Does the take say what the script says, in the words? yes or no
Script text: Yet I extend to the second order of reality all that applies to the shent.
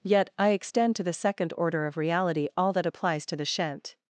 yes